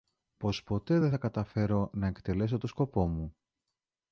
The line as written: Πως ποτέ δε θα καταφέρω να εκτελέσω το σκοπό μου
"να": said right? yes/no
yes